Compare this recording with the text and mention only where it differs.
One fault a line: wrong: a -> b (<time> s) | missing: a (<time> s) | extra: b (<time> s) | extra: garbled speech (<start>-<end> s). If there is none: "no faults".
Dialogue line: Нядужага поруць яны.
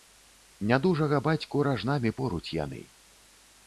extra: бацьку ражнамі (1.3 s)